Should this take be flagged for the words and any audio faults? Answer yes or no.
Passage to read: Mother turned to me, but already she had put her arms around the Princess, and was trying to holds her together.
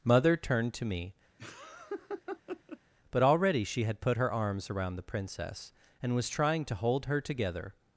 yes